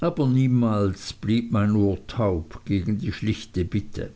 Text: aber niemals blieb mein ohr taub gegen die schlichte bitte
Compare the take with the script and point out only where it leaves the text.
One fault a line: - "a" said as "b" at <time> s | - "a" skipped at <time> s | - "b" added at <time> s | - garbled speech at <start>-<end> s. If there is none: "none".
none